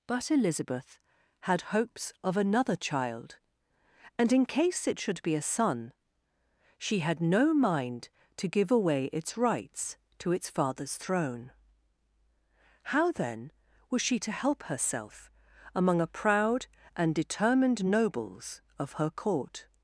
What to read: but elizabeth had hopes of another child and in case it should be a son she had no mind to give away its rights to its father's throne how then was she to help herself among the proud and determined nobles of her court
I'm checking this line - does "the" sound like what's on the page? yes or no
no